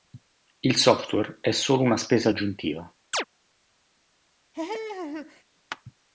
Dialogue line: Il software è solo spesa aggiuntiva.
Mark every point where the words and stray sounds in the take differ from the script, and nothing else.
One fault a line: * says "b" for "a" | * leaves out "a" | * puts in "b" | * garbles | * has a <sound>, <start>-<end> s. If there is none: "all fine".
* puts in "una"
* has a chirp, 3.1-3.2 s
* has a laugh, 4.5-5.4 s